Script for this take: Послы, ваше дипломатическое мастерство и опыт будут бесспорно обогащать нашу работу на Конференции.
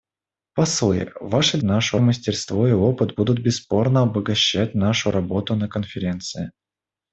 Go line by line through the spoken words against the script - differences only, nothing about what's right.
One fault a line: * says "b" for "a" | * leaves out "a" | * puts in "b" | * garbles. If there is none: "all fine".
* says "нашу" for "дипломатическое"